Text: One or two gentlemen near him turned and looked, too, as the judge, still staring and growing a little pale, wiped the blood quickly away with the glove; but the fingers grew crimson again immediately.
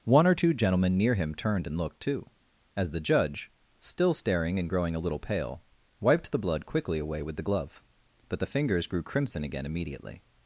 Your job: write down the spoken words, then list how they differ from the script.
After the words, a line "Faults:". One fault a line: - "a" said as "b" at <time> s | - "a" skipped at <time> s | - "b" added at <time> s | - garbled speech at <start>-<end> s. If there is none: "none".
One or two gentlemen near him turned and looked, too, as the judge, still staring and growing a little pale, wiped the blood quickly away with the glove; but the fingers grew crimson again immediately.
Faults:
none